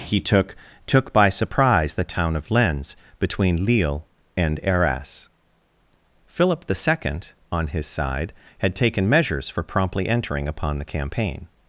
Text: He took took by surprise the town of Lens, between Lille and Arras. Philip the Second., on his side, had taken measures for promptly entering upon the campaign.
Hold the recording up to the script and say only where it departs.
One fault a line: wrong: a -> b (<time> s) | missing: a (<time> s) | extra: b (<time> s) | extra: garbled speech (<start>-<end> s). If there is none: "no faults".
no faults